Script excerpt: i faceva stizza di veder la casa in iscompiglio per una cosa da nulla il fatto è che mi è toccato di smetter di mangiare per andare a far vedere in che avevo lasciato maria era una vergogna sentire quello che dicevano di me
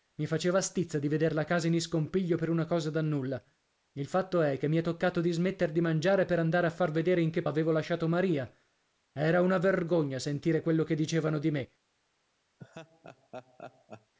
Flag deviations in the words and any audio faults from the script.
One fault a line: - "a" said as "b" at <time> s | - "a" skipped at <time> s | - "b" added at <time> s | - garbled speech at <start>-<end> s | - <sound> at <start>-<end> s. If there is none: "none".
- laugh at 12.6-14.1 s